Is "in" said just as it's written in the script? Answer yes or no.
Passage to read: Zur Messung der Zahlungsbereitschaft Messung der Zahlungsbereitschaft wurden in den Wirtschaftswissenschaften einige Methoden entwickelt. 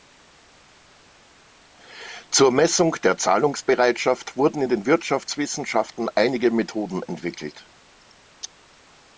yes